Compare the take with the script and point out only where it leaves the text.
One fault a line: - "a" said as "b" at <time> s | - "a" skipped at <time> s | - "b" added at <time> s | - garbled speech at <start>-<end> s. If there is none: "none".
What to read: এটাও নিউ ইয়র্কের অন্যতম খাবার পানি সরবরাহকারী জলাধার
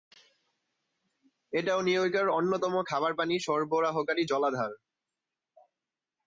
none